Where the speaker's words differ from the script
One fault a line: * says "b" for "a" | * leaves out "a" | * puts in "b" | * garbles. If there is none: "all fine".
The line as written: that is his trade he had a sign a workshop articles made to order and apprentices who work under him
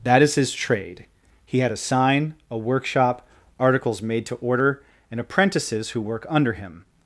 all fine